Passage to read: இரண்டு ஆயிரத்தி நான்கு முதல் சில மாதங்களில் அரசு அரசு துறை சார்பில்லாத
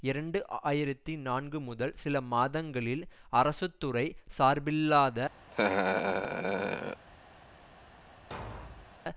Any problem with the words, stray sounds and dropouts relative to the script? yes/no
yes